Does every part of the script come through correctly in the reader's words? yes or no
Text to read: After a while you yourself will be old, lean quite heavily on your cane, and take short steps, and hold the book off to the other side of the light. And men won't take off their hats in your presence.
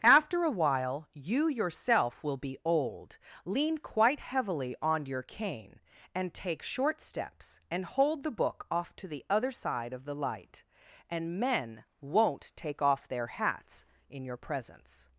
yes